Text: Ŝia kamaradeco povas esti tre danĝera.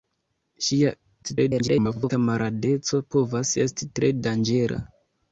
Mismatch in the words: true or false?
true